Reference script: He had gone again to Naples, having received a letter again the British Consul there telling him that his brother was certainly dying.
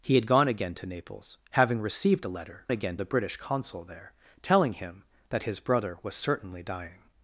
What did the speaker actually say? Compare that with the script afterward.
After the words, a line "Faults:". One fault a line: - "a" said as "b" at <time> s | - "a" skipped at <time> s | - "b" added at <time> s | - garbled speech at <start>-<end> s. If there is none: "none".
He had gone again to Naples, having received a letter again the British Consul there telling him that his brother was certainly dying.
Faults:
none